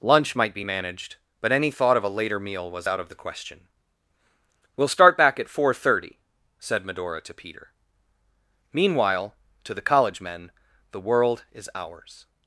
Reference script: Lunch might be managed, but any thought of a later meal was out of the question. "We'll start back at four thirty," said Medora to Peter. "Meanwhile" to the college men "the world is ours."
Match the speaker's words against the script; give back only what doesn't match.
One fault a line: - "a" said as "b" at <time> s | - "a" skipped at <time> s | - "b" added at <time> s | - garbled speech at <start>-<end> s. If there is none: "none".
none